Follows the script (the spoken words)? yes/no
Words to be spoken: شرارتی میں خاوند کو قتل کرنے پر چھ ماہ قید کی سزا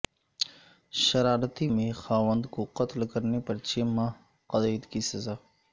yes